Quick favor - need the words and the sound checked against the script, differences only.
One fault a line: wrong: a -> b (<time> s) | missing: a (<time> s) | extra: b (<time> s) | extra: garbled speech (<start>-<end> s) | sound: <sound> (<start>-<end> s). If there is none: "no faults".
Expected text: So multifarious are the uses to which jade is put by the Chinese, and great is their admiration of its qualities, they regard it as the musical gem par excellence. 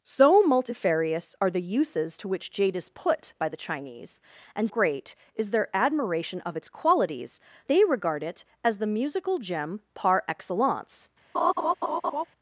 sound: laugh (11.3-12.2 s)